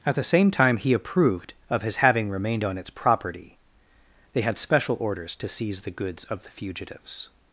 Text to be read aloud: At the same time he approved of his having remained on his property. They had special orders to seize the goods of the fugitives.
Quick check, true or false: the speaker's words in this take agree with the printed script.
false